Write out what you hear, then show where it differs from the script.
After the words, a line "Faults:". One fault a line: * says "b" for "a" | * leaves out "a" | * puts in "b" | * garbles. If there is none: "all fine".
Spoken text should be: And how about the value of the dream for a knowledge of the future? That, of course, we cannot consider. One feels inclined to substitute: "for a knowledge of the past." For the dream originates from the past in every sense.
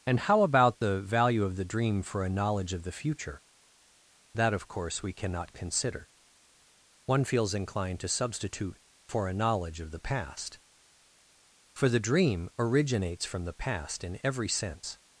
And how about the value of the dream for a knowledge of the future? That, of course, we cannot consider. One feels inclined to substitute: "for a knowledge of the past." For the dream originates from the past in every sense.
Faults:
all fine